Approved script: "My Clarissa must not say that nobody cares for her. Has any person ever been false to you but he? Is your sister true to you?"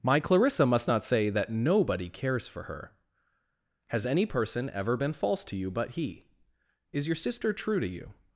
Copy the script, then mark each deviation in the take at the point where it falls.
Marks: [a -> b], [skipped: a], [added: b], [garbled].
"My Clarissa must not say that nobody cares for her. Has any person ever been false to you but he? Is your sister true to you?"